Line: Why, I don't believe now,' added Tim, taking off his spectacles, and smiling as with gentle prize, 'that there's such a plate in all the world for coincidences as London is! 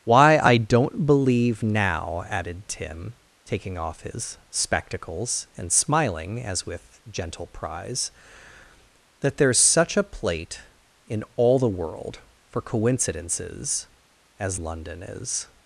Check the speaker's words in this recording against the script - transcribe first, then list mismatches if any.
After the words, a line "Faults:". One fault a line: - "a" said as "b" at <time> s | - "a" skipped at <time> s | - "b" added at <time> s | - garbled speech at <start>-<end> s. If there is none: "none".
Why, I don't believe now,' added Tim, taking off his spectacles, and smiling as with gentle prize, 'that there's such a plate in all the world for coincidences as London is!
Faults:
none